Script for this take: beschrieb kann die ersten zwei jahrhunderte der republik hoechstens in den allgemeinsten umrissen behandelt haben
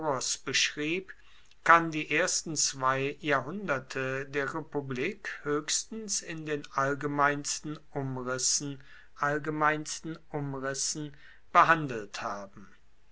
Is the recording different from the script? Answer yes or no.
yes